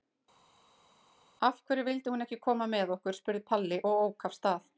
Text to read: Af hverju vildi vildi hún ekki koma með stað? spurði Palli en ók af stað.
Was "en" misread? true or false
true